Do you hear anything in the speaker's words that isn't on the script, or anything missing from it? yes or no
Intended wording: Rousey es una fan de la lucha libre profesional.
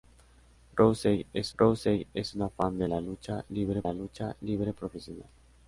yes